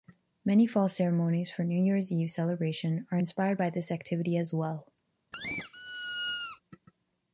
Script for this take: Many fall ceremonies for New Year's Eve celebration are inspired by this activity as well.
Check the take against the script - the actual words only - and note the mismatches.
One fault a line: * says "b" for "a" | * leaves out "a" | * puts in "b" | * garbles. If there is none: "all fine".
all fine